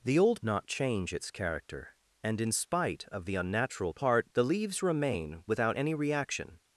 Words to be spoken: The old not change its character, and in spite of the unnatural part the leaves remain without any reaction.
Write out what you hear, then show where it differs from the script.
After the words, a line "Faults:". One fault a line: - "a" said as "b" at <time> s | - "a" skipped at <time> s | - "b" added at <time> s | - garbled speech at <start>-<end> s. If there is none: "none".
The old not change its character, and in spite of the unnatural part the leaves remain without any reaction.
Faults:
none